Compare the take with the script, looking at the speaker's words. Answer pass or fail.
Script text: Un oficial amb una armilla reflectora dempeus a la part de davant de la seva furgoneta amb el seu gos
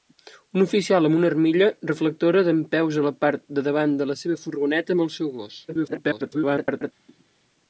fail